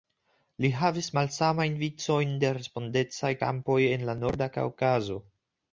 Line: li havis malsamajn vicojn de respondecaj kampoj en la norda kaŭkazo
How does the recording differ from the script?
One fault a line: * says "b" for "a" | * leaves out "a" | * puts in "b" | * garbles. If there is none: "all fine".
all fine